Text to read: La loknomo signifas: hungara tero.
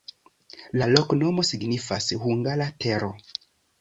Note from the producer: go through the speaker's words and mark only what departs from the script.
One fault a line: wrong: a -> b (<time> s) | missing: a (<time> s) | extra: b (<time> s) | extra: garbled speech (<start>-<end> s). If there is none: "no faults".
no faults